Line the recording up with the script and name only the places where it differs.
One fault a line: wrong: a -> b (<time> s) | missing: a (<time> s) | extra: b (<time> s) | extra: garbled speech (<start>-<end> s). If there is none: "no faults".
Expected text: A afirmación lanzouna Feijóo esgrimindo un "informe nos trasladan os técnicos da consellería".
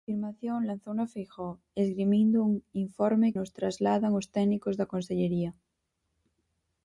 no faults